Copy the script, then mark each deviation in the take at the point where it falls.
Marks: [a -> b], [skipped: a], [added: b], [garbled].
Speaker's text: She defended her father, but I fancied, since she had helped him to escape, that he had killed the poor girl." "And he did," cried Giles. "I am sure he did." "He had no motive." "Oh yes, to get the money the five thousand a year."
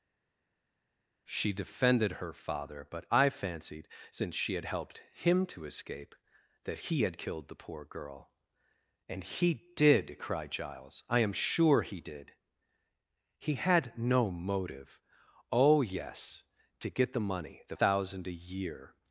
She defended her father, but I fancied, since she had helped him to escape, that he had killed the poor girl." "And he did," cried Giles. "I am sure he did." "He had no motive." "Oh yes, to get the money the [skipped: five] thousand a year."